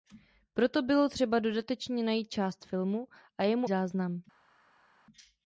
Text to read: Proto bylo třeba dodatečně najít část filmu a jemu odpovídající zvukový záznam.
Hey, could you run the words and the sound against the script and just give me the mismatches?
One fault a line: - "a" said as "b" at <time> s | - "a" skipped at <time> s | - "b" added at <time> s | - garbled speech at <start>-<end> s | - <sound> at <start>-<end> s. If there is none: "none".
- "odpovídající zvukový" skipped at 3.7 s